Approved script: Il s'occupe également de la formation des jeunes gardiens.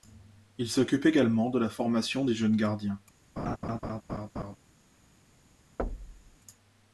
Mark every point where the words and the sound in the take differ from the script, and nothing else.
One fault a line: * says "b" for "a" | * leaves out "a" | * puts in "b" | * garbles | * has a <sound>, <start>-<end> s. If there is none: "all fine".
* has a laugh, 3.4-4.6 s
* has a thud, 5.8-6.4 s